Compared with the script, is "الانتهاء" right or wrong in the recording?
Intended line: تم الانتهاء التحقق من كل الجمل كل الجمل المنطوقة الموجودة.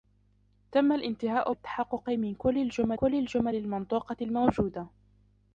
right